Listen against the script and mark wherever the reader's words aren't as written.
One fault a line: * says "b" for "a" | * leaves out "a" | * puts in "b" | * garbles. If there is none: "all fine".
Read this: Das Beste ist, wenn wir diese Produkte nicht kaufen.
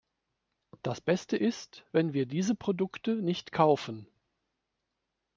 all fine